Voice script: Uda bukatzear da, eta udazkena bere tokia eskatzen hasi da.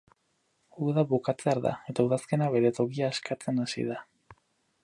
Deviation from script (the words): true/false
false